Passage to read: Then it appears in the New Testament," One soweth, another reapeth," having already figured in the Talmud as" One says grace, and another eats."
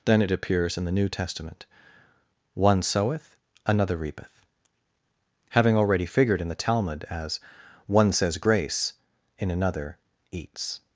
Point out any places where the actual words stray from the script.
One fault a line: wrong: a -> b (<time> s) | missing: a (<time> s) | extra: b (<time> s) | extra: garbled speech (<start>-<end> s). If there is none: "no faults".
wrong: and -> in (9.4 s)